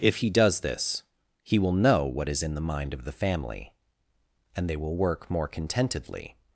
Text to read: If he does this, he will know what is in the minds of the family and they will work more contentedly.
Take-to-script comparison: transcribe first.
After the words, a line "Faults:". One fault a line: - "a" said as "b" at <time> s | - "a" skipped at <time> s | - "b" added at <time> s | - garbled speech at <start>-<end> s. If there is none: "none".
If he does this, he will know what is in the mind of the family and they will work more contentedly.
Faults:
- "minds" said as "mind" at 2.6 s